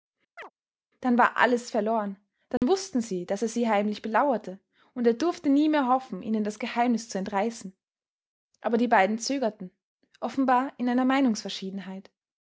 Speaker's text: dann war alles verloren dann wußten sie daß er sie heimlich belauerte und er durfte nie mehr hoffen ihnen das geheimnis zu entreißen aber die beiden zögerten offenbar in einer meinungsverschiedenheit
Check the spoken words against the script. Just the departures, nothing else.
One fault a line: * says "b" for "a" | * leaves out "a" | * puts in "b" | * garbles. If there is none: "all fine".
all fine